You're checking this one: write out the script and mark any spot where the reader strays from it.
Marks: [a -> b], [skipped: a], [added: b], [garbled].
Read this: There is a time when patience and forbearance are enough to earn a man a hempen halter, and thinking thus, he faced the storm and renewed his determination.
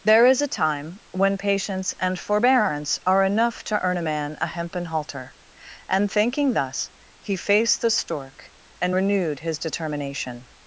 There is a time when patience and forbearance are enough to earn a man a hempen halter, and thinking thus, he faced the [storm -> stork] and renewed his determination.